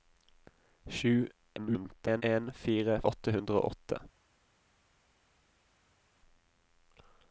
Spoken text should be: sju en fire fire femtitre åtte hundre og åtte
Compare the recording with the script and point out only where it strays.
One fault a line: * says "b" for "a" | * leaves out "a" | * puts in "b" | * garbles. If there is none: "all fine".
* garbles
* leaves out "fire femtitre"